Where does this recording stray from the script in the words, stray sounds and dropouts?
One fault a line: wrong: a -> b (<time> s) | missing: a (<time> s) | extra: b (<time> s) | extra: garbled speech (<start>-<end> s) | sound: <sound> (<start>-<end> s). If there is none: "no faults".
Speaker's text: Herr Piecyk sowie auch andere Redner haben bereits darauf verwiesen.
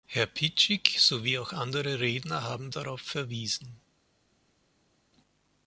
missing: bereits (2.7 s)